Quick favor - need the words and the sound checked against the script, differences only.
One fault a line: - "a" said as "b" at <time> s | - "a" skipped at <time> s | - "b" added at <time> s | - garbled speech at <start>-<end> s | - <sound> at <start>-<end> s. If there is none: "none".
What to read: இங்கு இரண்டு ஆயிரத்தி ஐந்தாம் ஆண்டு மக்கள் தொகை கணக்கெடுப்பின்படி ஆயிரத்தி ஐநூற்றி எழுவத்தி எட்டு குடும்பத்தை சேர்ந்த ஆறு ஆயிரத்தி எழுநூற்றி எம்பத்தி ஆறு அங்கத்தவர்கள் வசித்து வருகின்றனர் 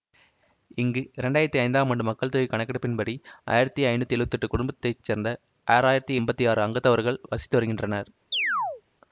- "எழுநூற்றி" skipped at 6.2 s
- chirp at 8.3-8.8 s